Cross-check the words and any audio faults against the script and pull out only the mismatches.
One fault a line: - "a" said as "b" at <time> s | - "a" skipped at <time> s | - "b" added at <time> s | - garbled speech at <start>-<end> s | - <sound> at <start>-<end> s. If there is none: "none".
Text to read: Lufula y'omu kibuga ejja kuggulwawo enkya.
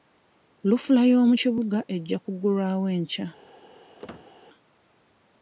- squeak at 4.0-4.3 s